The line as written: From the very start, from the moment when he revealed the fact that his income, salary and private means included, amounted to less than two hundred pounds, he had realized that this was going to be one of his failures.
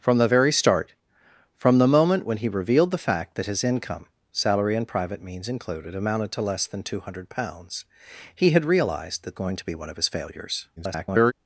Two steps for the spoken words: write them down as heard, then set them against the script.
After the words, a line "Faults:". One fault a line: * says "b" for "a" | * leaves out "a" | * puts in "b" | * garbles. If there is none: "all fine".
From the very start, from the moment when he revealed the fact that his income, salary and private means included, amounted to less than two hundred pounds, he had realized that going to be one of his failures. [garbled]
Faults:
* leaves out "this was"
* garbles